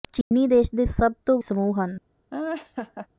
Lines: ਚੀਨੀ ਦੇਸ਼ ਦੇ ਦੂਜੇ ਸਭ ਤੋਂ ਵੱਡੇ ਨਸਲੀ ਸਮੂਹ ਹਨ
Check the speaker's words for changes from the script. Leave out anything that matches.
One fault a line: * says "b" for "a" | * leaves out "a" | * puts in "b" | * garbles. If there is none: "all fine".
* leaves out "ਦੂਜੇ"
* leaves out "ਵੱਡੇ ਨਸਲੀ"